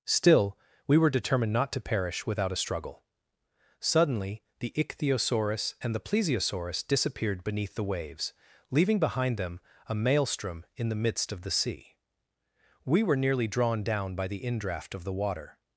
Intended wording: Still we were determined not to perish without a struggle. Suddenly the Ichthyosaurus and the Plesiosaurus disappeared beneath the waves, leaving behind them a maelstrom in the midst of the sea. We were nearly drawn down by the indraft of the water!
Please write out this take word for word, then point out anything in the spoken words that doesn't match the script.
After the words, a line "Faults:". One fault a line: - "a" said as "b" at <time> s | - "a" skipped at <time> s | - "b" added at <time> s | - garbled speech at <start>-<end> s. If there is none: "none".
Still we were determined not to perish without a struggle. Suddenly the Ichthyosaurus and the Plesiosaurus disappeared beneath the waves, leaving behind them a maelstrom in the midst of the sea. We were nearly drawn down by the indraft of the water!
Faults:
none